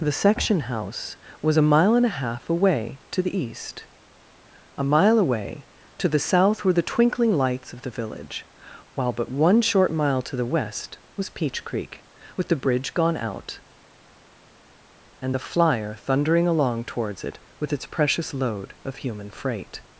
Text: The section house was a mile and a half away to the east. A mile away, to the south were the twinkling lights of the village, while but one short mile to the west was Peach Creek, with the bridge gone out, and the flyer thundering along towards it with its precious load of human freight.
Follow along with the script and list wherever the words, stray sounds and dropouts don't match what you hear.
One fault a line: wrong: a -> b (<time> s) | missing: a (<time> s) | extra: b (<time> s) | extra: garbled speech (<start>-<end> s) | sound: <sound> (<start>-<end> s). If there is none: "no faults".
no faults